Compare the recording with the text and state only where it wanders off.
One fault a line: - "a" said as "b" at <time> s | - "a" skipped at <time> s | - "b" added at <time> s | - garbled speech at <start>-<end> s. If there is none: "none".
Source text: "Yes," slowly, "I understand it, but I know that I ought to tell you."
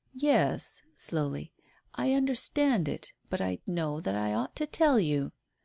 none